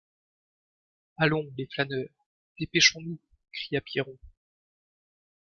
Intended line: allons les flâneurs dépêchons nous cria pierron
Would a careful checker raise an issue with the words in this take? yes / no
no